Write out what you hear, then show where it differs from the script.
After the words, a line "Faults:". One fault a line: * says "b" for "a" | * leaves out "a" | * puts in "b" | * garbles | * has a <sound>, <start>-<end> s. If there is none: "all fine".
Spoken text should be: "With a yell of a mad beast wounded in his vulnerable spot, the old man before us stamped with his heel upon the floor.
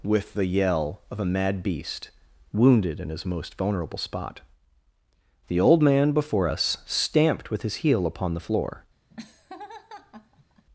"With the yell of a mad beast wounded in his most vulnerable spot, the old man before us stamped with his heel upon the floor.
Faults:
* says "the" for "a"
* puts in "most"
* has a laugh, 9.1-10.7 s